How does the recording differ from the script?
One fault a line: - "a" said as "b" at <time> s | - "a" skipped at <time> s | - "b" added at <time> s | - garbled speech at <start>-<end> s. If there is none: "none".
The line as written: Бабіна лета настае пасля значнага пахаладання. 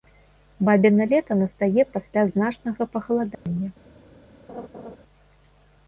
none